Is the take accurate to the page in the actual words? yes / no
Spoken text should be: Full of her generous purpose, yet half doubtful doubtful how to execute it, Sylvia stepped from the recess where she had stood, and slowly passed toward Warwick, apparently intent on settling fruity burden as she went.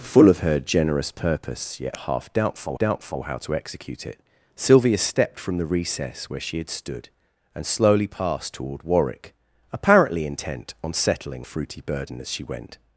yes